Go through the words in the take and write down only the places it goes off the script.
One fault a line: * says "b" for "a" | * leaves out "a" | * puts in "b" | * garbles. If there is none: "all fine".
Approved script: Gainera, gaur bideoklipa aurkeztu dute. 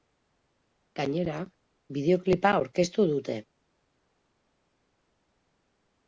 * leaves out "gaur"